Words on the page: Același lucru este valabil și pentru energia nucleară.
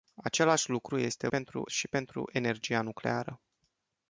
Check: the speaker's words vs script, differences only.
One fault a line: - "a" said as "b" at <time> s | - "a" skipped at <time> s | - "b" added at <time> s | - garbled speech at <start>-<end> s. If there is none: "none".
- "valabil" said as "pentru" at 1.3 s